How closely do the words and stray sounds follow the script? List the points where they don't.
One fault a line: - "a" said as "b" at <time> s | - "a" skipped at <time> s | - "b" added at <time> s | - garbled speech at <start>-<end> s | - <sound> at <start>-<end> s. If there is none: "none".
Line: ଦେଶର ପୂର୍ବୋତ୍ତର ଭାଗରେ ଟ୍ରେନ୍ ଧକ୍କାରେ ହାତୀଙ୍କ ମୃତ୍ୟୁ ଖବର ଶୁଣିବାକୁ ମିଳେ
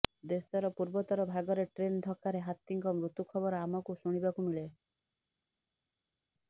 - "ଆମକୁ" added at 3.7 s